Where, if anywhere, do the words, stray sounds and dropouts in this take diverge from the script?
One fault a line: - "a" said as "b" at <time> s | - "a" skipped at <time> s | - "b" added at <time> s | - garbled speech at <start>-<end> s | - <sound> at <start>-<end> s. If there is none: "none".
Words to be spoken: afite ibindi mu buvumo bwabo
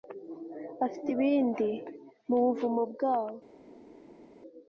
none